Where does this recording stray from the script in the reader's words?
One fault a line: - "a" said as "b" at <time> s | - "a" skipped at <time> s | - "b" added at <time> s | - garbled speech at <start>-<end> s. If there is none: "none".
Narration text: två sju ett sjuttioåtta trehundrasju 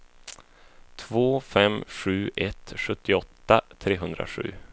- "fem" added at 1.4 s